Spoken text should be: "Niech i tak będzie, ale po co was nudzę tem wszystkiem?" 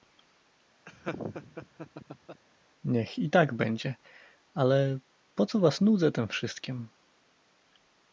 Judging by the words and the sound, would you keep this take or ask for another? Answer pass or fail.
fail